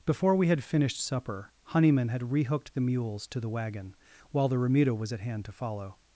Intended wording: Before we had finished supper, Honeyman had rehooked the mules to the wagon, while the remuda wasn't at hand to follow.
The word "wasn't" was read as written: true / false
false